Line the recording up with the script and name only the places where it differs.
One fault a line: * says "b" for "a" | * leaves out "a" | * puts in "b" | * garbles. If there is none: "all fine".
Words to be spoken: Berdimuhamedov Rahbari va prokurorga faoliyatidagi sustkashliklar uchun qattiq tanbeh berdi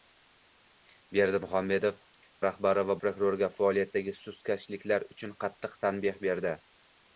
all fine